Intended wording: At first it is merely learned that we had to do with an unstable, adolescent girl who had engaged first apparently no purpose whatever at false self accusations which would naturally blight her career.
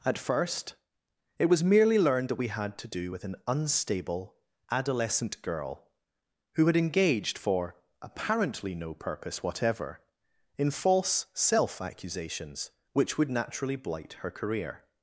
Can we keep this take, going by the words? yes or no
no